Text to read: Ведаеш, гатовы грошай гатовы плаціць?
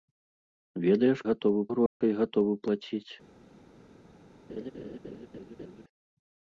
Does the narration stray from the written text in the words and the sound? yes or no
yes